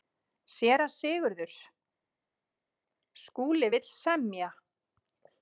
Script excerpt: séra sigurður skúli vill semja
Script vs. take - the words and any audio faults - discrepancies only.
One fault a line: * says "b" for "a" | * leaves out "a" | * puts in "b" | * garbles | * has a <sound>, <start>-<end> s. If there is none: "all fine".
all fine